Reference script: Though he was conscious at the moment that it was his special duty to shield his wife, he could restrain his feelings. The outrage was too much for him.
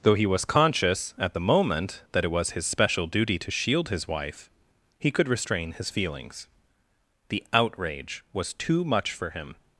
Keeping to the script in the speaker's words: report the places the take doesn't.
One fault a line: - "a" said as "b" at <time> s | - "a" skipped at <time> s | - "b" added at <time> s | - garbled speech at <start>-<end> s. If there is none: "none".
none